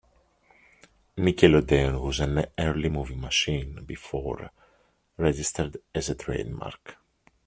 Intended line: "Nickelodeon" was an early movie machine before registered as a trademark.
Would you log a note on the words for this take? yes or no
no